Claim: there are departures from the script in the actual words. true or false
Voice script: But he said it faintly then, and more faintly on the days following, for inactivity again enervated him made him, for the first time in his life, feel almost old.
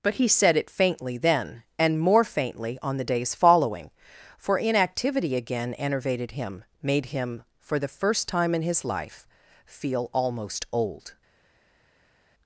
false